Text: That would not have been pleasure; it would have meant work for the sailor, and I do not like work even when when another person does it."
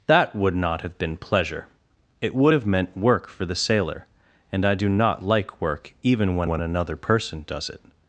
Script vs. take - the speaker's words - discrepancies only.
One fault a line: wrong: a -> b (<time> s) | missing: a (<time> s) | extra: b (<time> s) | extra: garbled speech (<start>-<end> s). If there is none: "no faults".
no faults